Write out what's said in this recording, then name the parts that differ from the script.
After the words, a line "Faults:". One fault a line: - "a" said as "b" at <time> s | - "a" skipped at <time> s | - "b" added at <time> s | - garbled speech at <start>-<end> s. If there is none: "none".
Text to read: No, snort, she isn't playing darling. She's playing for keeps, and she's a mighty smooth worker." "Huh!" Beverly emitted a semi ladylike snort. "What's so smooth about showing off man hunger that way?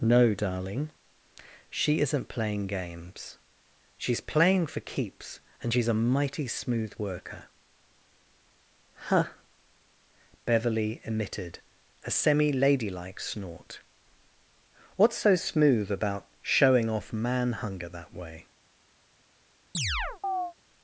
No, darling, she isn't playing games. She's playing for keeps, and she's a mighty smooth worker." "Huh!" Beverly emitted a semi ladylike snort. "What's so smooth about showing off man hunger that way?
Faults:
- "snort" said as "darling" at 0.3 s
- "darling" said as "games" at 2.7 s